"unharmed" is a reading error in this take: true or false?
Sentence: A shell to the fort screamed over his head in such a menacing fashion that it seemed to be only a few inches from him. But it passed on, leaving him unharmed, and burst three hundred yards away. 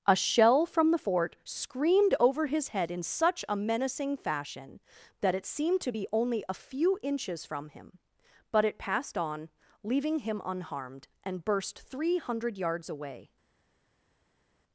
false